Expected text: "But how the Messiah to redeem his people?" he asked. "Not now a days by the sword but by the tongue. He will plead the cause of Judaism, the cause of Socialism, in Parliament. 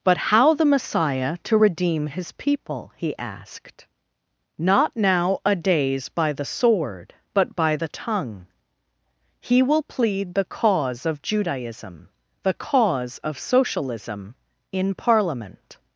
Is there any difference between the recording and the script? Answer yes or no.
no